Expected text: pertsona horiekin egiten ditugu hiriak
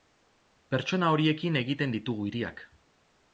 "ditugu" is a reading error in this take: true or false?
false